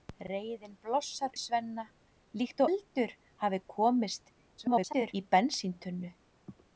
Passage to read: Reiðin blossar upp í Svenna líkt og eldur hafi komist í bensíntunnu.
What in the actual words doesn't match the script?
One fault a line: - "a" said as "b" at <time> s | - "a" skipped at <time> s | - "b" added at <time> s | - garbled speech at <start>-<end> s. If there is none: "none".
- "upp" skipped at 1.4 s
- "og" skipped at 2.6 s
- garbled speech at 4.6-5.1 s